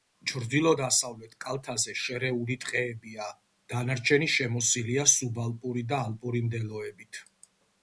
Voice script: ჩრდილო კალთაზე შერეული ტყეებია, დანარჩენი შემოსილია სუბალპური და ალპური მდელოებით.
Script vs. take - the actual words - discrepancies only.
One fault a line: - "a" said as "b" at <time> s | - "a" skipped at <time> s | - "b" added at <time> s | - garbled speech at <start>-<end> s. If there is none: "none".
- "დასავლეთ" added at 0.8 s